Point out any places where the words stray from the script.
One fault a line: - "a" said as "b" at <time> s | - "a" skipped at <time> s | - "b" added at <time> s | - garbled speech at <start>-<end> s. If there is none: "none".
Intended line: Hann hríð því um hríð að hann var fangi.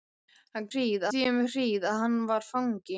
none